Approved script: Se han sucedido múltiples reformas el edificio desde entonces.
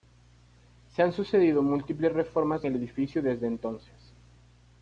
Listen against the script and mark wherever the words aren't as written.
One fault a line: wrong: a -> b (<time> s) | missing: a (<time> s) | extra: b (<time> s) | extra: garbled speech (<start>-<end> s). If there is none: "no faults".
no faults